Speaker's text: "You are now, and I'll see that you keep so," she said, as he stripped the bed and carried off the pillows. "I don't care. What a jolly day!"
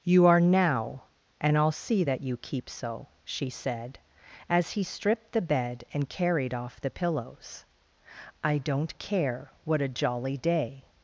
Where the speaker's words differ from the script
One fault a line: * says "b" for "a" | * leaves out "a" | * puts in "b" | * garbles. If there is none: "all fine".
all fine